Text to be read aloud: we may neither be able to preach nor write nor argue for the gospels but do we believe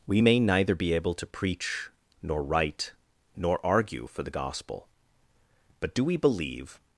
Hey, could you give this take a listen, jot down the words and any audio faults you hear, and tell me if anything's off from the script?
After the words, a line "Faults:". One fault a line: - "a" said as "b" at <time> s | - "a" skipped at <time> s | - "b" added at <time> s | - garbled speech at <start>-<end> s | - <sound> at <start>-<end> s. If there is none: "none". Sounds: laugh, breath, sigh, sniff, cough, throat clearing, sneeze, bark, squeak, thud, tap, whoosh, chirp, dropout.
we may neither be able to preach nor write nor argue for the gospel but do we believe
Faults:
- "gospels" said as "gospel" at 4.3 s